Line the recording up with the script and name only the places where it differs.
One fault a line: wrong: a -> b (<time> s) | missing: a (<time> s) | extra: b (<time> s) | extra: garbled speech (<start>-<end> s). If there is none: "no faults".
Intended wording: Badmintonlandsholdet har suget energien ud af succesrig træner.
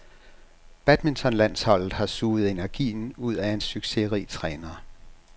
extra: en (3.5 s)